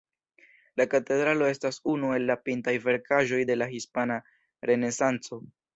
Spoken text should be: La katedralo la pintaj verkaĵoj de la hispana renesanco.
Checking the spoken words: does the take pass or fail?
fail